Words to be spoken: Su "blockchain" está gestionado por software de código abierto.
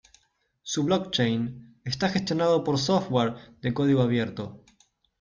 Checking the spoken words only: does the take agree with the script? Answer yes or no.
yes